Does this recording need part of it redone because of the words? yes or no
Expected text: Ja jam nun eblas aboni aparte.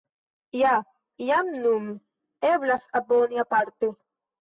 no